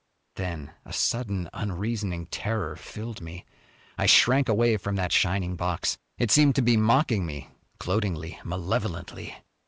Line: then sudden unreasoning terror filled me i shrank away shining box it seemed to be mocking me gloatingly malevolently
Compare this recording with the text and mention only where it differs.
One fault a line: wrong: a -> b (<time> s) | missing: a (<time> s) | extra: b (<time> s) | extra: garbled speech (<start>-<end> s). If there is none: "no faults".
extra: a (0.8 s)
extra: from that (4.8 s)